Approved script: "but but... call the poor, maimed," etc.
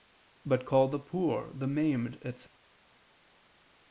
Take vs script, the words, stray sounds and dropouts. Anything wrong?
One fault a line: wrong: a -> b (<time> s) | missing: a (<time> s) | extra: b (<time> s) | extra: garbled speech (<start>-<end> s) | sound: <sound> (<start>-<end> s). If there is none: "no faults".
missing: but (0.7 s)
extra: the (1.5 s)